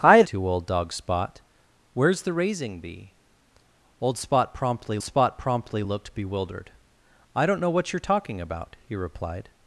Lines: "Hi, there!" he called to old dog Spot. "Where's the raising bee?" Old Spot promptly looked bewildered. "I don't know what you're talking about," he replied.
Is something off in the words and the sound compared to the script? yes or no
yes